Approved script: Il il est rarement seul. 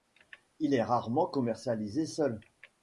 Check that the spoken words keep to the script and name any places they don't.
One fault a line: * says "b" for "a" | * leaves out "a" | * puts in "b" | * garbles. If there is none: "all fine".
* leaves out "il"
* puts in "commercialisé"